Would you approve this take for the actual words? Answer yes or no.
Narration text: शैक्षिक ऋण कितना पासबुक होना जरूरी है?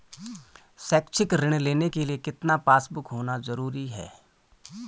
no